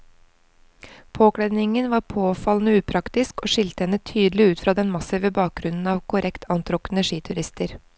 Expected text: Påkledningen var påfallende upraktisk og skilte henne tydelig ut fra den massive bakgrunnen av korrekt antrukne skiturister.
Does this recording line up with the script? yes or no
yes